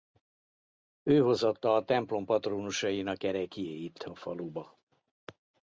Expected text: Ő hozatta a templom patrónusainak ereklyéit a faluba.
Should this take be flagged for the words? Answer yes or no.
no